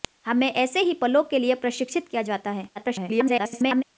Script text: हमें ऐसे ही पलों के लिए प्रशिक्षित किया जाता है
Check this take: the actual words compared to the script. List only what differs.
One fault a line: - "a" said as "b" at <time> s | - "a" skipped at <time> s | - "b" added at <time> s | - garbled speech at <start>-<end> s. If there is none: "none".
- garbled speech at 2.8-3.8 s